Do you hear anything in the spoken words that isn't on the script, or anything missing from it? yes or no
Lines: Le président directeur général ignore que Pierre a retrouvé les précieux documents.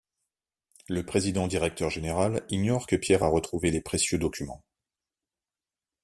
no